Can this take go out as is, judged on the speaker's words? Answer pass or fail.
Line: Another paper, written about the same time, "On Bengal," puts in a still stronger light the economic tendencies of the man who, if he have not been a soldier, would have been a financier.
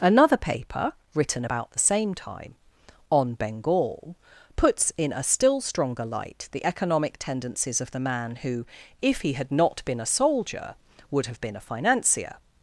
fail